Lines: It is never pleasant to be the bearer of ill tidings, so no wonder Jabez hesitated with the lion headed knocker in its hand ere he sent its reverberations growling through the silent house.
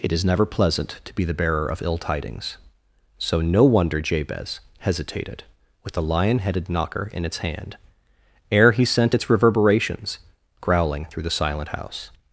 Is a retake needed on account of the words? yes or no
no